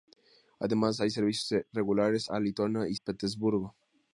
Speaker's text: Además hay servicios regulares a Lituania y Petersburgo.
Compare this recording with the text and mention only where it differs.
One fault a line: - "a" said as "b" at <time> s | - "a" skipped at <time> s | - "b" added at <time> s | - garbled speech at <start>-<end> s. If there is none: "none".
none